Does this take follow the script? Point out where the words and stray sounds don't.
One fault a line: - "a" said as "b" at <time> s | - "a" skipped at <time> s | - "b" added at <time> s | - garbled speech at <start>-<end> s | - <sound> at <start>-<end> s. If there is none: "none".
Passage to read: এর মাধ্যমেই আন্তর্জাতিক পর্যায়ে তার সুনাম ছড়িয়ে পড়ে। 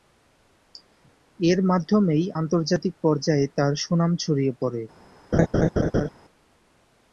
- laugh at 5.3-6.1 s